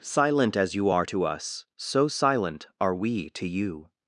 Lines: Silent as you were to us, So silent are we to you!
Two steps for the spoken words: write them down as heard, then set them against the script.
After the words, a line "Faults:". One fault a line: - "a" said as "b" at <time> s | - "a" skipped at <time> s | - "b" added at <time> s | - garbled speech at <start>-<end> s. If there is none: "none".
Silent as you are to us, So silent are we to you!
Faults:
- "were" said as "are" at 0.9 s